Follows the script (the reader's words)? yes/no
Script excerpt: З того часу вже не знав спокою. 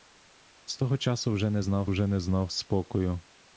no